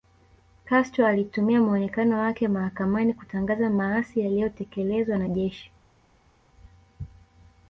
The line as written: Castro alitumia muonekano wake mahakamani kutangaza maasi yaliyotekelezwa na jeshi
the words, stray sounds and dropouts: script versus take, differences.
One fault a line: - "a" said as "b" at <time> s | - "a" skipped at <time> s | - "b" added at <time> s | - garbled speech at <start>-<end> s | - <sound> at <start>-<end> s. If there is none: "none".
none